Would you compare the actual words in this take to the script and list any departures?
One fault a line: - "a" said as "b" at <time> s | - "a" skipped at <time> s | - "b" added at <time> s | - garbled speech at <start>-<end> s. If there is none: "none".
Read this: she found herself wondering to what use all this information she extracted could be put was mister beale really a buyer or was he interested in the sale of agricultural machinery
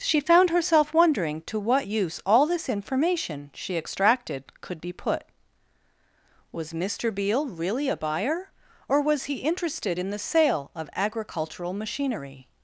none